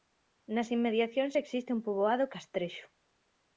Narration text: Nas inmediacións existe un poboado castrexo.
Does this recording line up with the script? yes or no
yes